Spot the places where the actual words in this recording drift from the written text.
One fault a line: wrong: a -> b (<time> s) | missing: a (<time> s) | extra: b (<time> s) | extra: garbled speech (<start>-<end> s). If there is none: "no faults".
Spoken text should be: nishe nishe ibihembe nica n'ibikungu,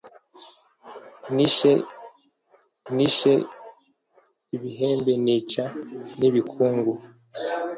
no faults